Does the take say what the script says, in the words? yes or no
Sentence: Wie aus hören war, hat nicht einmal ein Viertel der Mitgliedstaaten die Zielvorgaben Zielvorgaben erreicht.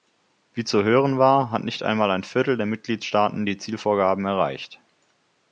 no